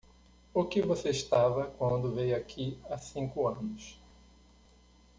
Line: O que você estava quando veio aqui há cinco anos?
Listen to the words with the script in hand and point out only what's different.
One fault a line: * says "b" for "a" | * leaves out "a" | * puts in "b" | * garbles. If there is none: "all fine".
all fine